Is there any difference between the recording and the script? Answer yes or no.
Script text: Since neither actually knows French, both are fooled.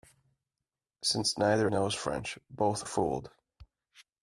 yes